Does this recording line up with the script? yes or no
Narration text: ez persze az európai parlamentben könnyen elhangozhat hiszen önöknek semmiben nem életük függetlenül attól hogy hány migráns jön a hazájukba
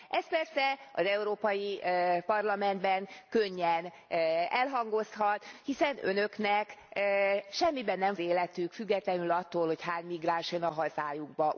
yes